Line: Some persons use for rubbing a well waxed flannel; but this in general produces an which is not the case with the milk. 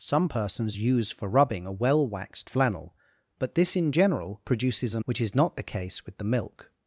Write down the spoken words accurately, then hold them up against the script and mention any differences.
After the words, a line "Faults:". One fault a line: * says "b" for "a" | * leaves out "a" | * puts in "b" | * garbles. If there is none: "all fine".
Some persons use for rubbing a well waxed flannel; but this in general produces an which is not the case with the milk.
Faults:
all fine